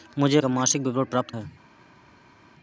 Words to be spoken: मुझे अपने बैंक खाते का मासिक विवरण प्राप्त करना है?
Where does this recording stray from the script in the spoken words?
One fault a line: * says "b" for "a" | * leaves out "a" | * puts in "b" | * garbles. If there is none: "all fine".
* leaves out "अपने बैंक खाते"
* leaves out "करना"